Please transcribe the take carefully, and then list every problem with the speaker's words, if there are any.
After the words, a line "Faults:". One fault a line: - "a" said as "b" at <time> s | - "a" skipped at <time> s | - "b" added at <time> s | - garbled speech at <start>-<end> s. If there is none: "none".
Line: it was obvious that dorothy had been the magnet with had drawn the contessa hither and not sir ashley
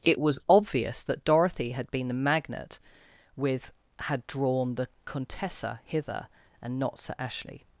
it was obvious that dorothy had been the magnet with had drawn the contessa hither and not sir ashley
Faults:
none